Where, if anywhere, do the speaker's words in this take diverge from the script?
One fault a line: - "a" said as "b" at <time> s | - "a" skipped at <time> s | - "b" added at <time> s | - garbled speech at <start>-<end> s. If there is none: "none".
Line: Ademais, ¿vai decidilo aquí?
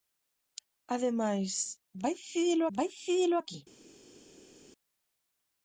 - "vai decidilo" added at 2.8 s